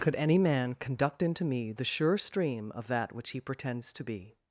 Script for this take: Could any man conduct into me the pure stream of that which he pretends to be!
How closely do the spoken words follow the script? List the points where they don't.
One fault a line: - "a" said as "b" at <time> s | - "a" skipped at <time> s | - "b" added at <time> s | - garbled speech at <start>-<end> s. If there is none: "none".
- "pure" said as "sure" at 1.8 s